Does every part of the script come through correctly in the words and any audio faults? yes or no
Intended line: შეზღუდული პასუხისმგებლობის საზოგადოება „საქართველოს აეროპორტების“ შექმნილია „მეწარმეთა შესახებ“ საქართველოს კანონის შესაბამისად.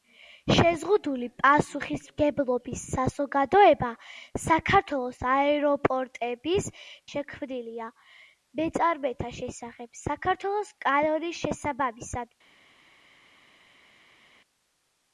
yes